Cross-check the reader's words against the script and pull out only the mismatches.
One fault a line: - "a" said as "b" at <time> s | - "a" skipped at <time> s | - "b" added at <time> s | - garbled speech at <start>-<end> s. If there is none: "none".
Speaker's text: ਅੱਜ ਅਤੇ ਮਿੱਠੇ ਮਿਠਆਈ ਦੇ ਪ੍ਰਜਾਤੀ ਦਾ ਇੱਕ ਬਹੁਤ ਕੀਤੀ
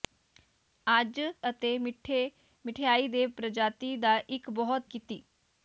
none